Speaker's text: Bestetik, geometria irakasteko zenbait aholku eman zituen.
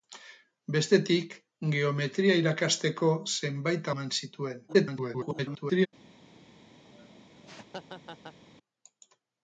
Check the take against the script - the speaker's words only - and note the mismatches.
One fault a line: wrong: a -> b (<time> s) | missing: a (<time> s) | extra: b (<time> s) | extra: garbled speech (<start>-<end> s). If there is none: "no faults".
missing: aholku (3.9 s)
extra: garbled speech (4.7-5.9 s)